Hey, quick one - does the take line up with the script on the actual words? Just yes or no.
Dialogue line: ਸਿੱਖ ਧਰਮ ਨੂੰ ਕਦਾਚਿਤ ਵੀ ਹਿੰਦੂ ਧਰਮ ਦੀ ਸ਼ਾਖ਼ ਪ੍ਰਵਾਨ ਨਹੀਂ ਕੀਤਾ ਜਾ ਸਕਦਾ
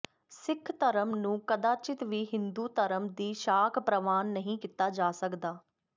yes